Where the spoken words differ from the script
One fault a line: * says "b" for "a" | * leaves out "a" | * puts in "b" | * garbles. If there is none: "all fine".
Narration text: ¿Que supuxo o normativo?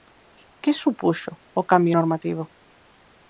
* puts in "cambio"